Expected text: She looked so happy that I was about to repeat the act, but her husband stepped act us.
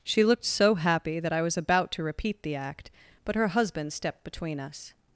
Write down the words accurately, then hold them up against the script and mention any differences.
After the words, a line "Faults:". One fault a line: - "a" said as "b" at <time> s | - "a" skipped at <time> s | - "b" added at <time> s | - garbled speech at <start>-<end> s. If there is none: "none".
She looked so happy that I was about to repeat the act, but her husband stepped between us.
Faults:
- "act" said as "between" at 4.2 s